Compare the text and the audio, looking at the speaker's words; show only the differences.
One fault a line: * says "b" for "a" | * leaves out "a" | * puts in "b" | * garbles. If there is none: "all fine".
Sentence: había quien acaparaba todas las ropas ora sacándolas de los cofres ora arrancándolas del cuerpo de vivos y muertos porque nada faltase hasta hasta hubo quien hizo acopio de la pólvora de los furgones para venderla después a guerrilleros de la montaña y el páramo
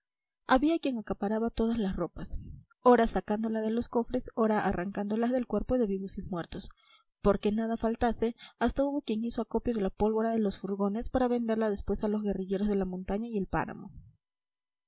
* leaves out "hasta"
* puts in "los"